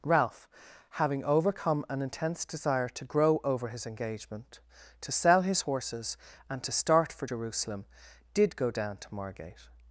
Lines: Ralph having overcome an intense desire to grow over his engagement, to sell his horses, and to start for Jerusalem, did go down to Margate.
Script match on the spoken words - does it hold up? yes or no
yes